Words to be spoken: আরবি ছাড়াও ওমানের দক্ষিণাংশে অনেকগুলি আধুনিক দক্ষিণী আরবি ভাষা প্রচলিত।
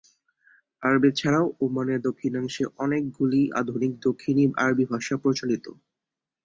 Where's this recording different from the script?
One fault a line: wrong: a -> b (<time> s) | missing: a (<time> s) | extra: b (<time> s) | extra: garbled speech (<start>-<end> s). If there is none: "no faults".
no faults